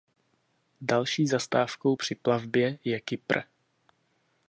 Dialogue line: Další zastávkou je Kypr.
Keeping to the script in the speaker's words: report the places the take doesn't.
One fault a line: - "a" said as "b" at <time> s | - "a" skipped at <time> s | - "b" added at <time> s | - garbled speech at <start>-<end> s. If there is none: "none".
- "při plavbě" added at 1.9 s